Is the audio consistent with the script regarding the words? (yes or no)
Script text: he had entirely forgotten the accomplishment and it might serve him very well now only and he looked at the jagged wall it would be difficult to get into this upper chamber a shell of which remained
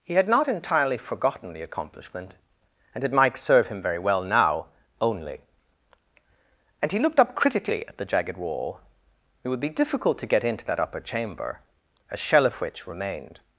no